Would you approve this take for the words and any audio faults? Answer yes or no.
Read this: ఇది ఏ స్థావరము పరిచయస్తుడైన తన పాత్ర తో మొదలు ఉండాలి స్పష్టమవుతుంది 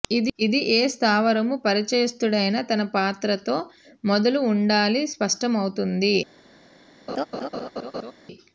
no